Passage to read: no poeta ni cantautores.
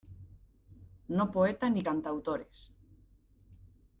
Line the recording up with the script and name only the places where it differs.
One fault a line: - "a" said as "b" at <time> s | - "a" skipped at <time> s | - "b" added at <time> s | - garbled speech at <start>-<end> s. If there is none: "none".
none